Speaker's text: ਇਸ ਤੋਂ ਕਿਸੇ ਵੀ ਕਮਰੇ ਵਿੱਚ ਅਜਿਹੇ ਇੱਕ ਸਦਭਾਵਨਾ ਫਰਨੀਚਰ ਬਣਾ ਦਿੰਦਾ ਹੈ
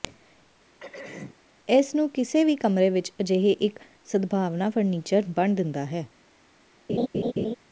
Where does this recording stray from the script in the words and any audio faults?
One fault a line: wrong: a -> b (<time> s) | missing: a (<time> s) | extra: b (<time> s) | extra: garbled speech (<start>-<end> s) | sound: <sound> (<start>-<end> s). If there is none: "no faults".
sound: throat clearing (0.8-1.4 s)
wrong: ਤੋਂ -> ਨੂੰ (1.9 s)
sound: laugh (6.9-7.5 s)